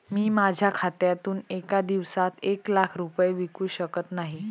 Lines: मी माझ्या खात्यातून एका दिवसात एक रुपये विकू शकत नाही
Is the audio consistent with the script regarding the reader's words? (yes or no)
no